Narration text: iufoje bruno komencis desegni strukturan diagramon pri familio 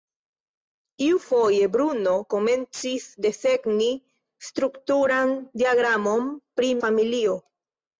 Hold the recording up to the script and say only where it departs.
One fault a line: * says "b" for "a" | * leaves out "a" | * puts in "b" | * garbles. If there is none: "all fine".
all fine